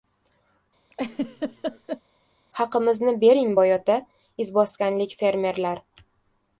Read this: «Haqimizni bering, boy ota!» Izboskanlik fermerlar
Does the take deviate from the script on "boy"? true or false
false